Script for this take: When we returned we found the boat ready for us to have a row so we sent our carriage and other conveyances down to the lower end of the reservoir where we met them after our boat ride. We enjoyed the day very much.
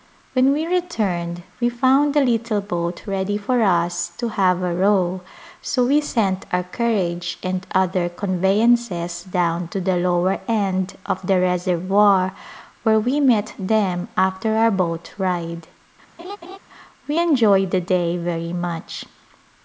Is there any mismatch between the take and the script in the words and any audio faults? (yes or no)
yes